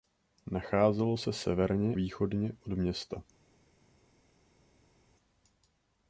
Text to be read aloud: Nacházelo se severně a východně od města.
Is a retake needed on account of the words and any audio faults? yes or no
yes